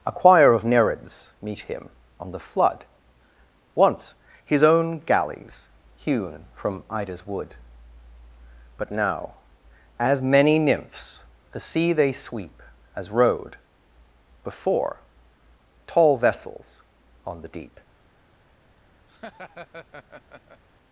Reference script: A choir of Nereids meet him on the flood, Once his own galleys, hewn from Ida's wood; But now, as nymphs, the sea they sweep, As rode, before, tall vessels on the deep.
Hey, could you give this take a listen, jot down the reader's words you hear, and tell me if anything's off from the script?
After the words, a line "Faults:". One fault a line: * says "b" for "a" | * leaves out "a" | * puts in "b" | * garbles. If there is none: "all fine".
A choir of Nereids meet him on the flood, Once his own galleys, hewn from Ida's wood; But now, as many nymphs, the sea they sweep, As rode, before, tall vessels on the deep.
Faults:
* puts in "many"